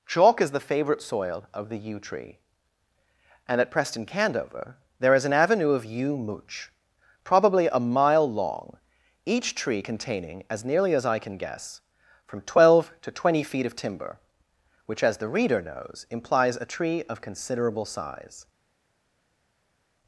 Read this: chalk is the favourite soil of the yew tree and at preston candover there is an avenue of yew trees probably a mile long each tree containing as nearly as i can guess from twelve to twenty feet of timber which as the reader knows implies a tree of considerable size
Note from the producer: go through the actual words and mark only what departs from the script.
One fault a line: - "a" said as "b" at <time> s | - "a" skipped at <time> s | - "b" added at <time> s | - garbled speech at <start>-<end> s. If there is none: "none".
- "trees" said as "mooch" at 6.2 s